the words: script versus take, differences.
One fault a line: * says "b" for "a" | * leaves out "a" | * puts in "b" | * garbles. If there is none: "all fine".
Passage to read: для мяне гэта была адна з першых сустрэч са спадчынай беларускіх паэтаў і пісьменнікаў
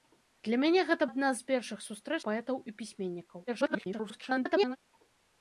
* leaves out "была"
* leaves out "са спадчынай беларускіх"
* garbles